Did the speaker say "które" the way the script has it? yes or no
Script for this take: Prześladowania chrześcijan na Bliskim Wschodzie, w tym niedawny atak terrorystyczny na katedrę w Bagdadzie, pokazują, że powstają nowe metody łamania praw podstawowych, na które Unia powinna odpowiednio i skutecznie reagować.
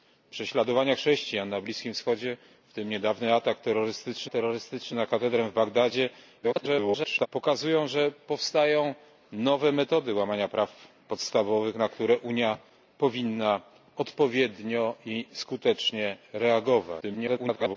yes